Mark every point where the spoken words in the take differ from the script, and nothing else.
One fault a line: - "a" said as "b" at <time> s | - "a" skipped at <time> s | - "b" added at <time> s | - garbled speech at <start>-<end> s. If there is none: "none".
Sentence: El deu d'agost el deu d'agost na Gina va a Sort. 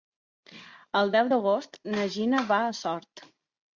- "el deu d'agost" skipped at 1.8 s